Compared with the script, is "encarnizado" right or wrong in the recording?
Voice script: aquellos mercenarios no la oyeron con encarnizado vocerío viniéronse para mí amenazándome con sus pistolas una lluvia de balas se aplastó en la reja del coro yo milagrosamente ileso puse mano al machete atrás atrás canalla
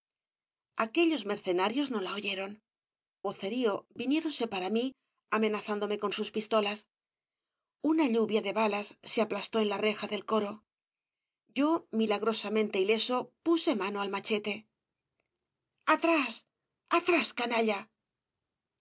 wrong